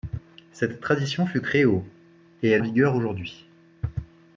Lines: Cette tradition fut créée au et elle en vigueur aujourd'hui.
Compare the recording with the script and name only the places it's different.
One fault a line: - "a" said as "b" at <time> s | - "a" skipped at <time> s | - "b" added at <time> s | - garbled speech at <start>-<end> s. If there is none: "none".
none